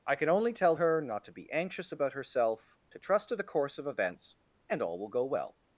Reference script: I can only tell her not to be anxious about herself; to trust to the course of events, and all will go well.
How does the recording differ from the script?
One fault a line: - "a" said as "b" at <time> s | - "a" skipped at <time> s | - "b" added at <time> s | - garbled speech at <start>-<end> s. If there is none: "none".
none